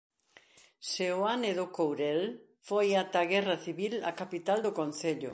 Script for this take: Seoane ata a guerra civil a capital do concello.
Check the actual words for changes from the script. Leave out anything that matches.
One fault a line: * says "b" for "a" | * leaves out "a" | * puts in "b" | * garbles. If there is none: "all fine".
* puts in "do Courel foi"